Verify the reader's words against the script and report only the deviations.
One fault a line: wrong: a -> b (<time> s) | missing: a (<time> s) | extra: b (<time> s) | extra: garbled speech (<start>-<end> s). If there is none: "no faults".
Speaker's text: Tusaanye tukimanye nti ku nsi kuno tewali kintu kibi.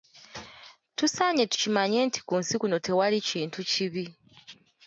no faults